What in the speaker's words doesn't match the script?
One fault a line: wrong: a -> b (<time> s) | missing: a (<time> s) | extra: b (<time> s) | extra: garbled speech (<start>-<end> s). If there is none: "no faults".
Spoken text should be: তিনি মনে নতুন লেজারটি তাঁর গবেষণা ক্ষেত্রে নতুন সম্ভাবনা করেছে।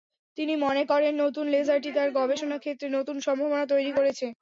extra: করেন (0.8 s)
extra: তৈরি (3.7 s)